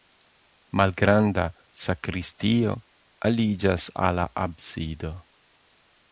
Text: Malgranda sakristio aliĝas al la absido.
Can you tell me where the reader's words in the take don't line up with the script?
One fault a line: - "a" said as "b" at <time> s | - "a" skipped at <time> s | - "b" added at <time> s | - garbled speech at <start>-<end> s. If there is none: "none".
none